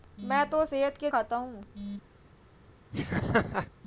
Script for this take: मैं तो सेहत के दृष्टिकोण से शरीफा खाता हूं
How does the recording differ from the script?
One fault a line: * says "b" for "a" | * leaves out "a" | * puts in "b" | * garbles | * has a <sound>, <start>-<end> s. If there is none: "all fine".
* leaves out "दृष्टिकोण से शरीफा"
* has a laugh, 2.9-3.7 s